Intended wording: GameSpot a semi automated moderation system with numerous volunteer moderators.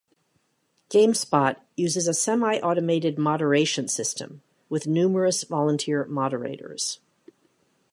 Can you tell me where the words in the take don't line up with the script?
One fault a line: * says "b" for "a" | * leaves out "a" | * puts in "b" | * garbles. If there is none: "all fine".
* puts in "uses"